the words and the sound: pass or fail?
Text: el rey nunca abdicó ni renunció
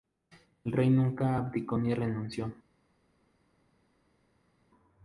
pass